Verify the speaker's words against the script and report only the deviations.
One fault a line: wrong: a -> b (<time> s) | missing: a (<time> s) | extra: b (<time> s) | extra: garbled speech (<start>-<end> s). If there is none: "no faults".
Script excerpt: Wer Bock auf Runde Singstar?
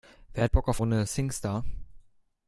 no faults